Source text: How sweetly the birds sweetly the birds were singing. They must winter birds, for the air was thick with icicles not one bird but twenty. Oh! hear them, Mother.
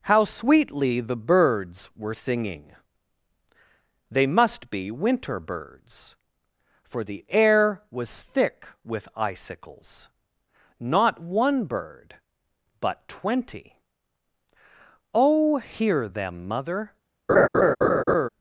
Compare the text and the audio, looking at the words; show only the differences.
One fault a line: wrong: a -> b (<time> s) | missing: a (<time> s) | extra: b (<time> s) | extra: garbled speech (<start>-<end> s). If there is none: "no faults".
missing: sweetly the birds (1.9 s)
extra: be (4.7 s)